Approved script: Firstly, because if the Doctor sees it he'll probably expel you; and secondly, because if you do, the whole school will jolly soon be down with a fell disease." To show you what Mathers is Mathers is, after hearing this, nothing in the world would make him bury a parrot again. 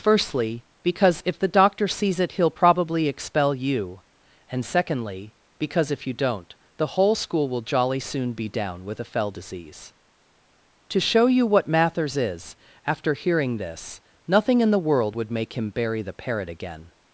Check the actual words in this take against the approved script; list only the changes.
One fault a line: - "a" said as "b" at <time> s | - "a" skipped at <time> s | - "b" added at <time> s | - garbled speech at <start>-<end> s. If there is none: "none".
- "do" said as "don't" at 6.1 s
- "Mathers is" skipped at 12.5 s
- "a" said as "the" at 16.0 s